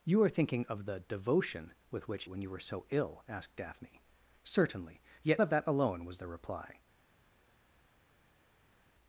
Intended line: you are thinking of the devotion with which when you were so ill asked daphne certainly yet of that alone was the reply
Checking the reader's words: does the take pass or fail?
pass